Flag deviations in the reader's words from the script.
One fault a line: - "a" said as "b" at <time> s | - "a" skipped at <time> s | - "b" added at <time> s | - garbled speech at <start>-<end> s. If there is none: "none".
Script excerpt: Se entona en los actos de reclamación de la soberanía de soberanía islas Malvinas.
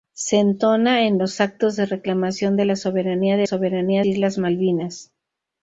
none